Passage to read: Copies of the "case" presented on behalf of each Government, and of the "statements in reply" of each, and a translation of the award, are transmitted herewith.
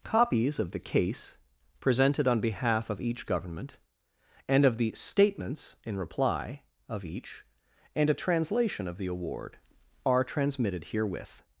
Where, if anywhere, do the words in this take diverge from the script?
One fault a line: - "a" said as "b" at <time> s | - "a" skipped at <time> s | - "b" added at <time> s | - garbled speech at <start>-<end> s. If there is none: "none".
none